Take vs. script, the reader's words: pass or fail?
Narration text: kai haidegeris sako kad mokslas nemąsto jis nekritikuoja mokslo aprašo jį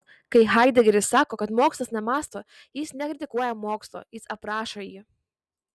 fail